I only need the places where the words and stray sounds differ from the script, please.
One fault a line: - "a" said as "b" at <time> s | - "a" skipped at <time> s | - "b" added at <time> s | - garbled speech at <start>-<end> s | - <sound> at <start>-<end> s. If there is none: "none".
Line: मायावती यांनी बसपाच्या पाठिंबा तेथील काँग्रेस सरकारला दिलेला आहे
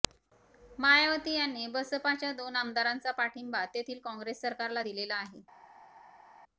- "दोन आमदारांचा" added at 2.3 s